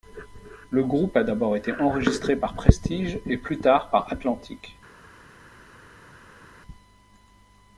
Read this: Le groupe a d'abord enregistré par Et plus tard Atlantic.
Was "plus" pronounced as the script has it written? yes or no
yes